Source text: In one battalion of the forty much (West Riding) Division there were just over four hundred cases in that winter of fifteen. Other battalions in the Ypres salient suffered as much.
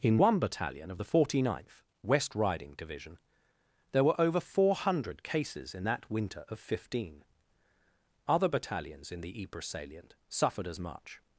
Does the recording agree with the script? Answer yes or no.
no